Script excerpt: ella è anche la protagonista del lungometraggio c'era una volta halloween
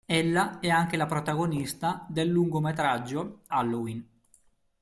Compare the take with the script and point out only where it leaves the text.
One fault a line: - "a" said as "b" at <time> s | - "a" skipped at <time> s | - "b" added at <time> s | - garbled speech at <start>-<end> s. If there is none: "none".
- "c'era una volta" skipped at 3.4 s